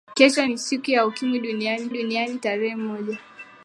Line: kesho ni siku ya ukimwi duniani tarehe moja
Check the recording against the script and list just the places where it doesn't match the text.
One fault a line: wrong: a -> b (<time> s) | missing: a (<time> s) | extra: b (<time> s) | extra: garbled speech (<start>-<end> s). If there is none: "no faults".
extra: duniani (1.9 s)